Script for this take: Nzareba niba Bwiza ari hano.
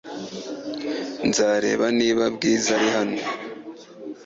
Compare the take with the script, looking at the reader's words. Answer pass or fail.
pass